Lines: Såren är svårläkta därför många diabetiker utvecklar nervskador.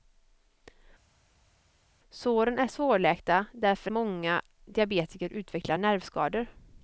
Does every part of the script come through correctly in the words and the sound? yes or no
yes